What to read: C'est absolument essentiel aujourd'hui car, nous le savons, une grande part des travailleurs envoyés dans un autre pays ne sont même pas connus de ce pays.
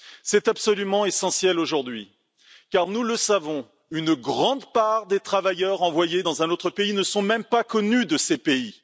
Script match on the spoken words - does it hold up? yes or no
yes